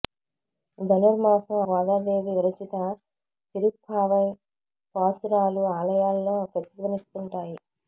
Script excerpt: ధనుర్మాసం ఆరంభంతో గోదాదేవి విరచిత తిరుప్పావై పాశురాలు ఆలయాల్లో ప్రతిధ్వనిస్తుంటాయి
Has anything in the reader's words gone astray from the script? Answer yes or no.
yes